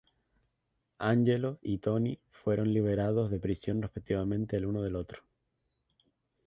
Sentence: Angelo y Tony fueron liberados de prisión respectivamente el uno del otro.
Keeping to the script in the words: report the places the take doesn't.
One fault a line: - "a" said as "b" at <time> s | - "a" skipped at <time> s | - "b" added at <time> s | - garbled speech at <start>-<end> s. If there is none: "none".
none